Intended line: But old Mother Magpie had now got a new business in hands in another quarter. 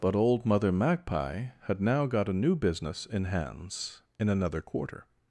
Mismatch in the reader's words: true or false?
false